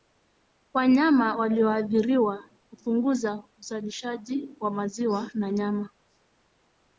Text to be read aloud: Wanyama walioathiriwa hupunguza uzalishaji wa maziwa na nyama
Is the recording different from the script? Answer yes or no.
no